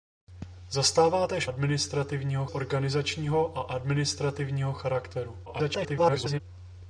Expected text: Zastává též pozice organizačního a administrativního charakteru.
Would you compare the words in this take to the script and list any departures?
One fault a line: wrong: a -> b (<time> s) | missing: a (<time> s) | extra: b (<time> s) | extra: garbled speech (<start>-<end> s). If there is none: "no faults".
wrong: pozice -> administrativního (1.5 s)
extra: garbled speech (5.5-6.4 s)